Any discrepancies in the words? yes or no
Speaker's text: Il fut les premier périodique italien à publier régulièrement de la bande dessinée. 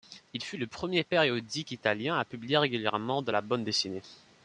yes